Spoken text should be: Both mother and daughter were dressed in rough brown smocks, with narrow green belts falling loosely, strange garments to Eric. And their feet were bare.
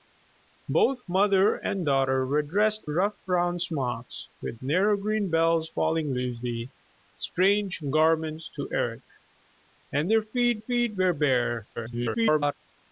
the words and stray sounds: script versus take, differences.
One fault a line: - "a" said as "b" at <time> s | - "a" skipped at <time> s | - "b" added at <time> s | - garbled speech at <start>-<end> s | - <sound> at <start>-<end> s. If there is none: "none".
- "in" skipped at 2.9 s
- "feet" added at 10.6 s
- garbled speech at 11.8-12.5 s